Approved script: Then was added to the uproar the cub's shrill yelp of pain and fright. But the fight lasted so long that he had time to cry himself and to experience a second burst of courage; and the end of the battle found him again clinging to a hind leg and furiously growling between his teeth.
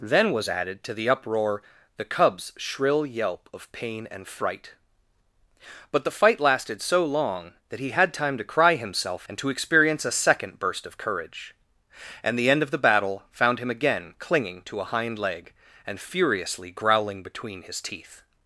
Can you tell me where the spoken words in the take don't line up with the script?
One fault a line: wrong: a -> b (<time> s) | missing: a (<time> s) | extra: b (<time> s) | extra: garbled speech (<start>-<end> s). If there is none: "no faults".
no faults